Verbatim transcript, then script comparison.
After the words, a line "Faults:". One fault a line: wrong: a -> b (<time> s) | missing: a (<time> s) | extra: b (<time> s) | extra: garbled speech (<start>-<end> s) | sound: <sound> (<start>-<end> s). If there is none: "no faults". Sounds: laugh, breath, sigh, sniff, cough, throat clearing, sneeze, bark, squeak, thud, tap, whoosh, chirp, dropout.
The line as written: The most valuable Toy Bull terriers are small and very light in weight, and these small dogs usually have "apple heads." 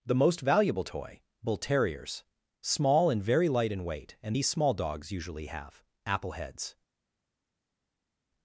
The most valuable Toy Bull terriers small and very light in weight, and these small dogs usually have "apple heads."
Faults:
missing: are (2.2 s)